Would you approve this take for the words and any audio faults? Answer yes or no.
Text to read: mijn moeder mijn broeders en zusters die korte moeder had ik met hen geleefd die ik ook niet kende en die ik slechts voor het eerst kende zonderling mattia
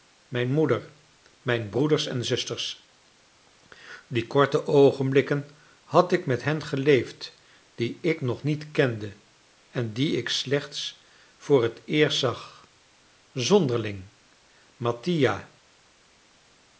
no